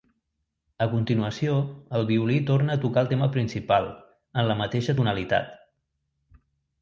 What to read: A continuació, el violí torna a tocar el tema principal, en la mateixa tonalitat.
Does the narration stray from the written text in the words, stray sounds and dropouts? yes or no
no